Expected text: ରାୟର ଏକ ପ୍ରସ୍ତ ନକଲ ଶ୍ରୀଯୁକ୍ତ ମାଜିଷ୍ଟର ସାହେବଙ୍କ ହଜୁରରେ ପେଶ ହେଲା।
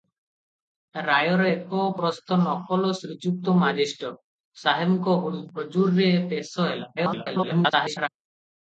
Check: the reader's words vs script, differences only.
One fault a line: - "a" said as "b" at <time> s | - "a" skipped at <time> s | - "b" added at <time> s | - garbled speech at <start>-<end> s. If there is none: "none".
- garbled speech at 7.0-8.1 s